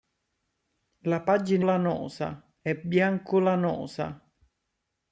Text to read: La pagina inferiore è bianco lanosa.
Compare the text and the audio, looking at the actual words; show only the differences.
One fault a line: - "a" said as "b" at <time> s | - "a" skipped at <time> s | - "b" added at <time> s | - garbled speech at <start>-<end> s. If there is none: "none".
- "inferiore" said as "lanosa" at 1.6 s